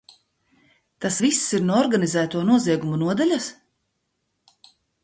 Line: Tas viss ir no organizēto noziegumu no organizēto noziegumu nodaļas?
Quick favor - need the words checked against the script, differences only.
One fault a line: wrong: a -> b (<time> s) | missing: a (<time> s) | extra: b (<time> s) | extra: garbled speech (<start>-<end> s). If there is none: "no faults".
missing: no organizēto noziegumu (3.0 s)